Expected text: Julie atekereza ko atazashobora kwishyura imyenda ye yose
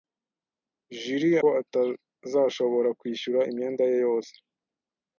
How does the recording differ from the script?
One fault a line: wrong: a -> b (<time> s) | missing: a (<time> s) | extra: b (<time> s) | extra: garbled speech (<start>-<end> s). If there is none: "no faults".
missing: atekereza (1.4 s)